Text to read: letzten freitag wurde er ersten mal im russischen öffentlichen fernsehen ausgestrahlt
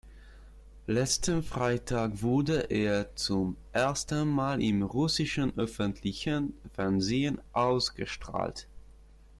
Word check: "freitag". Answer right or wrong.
right